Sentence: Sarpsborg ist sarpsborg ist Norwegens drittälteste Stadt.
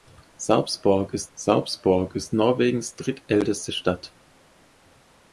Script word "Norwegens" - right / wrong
right